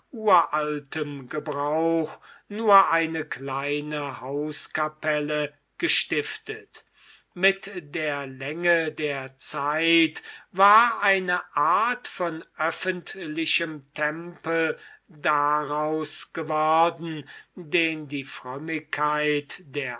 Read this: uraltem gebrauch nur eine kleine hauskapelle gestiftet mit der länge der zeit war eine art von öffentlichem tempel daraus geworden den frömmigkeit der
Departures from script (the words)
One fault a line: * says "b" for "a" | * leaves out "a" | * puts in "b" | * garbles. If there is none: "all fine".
* puts in "die"